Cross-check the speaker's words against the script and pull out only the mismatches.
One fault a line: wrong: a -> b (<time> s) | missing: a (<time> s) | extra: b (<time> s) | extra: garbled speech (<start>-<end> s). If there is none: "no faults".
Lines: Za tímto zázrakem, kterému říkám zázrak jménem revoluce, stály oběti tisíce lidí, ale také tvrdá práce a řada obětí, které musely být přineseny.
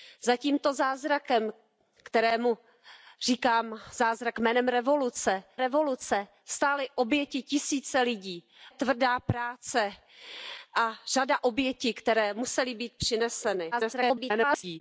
extra: revoluce (5.5 s)
missing: ale také (8.5 s)
extra: garbled speech (13.7-14.8 s)